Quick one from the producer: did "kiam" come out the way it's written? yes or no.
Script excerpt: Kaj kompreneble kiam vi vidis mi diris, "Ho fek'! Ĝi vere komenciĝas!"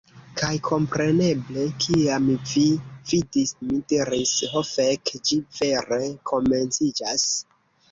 yes